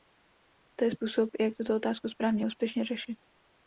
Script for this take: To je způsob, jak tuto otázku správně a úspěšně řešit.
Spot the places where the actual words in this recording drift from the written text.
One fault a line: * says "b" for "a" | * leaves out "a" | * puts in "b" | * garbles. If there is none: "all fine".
all fine